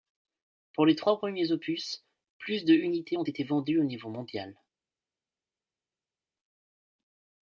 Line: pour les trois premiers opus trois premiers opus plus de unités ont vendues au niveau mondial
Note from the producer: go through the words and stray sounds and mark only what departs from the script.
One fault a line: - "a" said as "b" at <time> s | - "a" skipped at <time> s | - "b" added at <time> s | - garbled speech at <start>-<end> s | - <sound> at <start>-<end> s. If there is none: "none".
- "trois premiers opus" skipped at 2.1 s
- "été" added at 3.2 s